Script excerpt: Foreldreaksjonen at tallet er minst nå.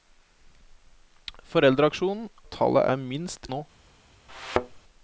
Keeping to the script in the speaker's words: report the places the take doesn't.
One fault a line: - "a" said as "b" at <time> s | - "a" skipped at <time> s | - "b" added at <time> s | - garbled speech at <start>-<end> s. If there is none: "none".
none